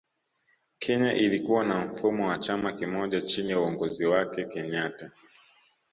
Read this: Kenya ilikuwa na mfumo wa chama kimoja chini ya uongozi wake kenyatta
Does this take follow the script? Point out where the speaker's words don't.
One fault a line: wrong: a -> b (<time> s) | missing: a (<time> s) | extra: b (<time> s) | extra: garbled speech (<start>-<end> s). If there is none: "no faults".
no faults